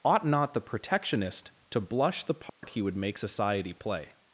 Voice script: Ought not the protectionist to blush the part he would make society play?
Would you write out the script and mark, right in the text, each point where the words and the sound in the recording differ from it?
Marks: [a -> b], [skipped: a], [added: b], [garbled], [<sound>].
Ought not the protectionist to blush the part [dropout] he would make society play?